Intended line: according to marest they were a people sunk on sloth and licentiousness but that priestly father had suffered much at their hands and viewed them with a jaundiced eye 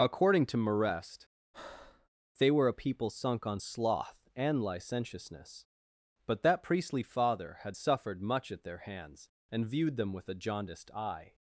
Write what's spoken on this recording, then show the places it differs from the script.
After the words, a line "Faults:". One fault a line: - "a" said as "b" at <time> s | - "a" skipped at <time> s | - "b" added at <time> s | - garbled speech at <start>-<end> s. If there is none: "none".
according to marest they were a people sunk on sloth and licentiousness but that priestly father had suffered much at their hands and viewed them with a jaundiced eye
Faults:
none